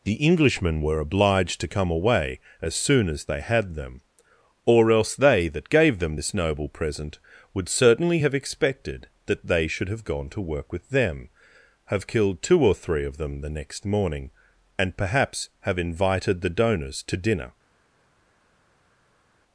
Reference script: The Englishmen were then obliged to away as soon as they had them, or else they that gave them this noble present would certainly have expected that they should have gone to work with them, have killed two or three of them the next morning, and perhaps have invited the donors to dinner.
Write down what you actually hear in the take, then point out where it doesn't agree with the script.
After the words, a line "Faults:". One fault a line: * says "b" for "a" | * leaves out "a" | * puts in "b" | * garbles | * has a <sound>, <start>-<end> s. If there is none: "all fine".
The Englishmen were obliged to come away as soon as they had them, or else they that gave them this noble present would certainly have expected that they should have gone to work with them, have killed two or three of them the next morning, and perhaps have invited the donors to dinner.
Faults:
* leaves out "then"
* puts in "come"